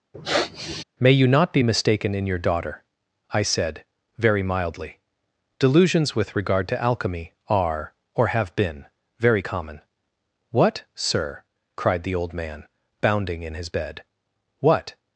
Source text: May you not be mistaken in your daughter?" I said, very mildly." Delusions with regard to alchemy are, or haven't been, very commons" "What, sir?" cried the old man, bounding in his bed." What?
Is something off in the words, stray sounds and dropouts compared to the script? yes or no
yes